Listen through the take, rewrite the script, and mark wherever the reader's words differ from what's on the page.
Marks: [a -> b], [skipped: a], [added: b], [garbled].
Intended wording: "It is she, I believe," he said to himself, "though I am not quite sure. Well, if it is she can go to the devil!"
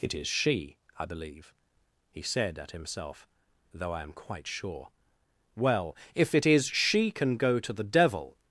"It is she, I believe," he said [to -> at] himself, "though I am [skipped: not] quite sure. Well, if it is she can go to the devil!"